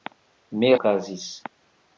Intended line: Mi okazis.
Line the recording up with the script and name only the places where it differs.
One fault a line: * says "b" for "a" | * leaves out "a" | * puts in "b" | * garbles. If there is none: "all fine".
all fine